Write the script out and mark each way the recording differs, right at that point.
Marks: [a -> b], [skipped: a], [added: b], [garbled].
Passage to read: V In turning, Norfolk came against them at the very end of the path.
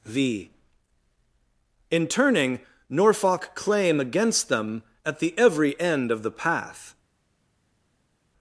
V In turning, Norfolk [came -> claim] against them at the [very -> every] end of the path.